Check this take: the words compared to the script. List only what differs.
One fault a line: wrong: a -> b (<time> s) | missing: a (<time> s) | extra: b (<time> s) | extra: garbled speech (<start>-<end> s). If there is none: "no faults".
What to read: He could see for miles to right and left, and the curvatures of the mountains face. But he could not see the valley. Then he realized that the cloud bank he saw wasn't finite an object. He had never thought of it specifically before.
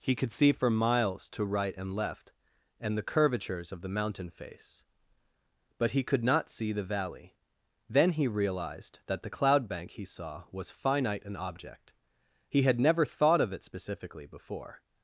wrong: mountains -> mountain (3.9 s)
wrong: wasn't -> was (10.5 s)